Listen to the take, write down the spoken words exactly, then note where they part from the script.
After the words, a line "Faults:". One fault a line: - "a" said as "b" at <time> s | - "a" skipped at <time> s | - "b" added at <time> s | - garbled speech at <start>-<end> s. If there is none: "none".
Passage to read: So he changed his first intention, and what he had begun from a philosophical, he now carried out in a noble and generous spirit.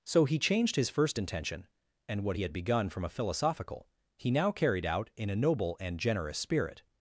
So he changed his first intention, and what he had begun from a philosophical, he now carried out in a noble and generous spirit.
Faults:
none